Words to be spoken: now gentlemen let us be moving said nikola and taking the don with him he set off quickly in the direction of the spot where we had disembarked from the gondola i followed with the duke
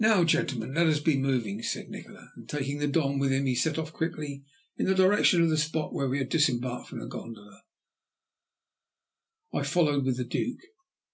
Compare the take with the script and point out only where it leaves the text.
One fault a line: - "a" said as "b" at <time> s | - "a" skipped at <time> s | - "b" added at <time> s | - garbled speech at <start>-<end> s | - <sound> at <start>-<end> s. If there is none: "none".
none